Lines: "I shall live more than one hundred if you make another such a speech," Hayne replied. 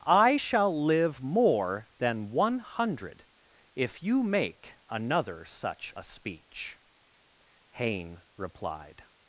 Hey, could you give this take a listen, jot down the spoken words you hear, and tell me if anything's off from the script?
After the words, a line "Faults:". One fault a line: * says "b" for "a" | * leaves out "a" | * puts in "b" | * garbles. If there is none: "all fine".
"I shall live more than one hundred if you make another such a speech," Hayne replied.
Faults:
all fine